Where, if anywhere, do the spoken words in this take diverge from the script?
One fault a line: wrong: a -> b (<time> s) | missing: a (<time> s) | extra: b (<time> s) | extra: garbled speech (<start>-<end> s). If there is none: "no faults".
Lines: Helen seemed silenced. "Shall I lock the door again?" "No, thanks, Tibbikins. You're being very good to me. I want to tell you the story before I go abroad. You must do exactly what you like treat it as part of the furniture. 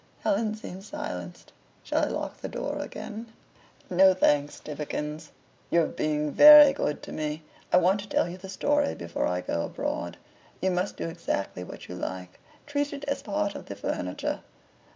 no faults